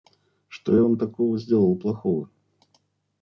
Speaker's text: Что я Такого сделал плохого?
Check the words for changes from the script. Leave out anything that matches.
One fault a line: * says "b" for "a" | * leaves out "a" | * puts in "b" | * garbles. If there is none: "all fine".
* puts in "Вам"